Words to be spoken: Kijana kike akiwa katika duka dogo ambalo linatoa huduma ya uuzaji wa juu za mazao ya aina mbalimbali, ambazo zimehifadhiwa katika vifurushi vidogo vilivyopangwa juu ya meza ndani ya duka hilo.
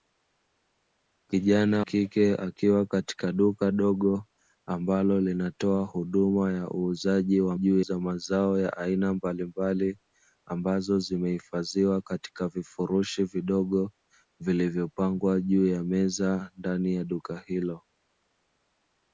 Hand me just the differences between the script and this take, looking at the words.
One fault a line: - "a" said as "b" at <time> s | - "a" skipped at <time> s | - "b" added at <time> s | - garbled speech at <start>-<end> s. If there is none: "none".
none